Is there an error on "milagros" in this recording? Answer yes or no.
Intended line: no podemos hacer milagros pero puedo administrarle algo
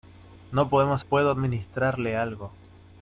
yes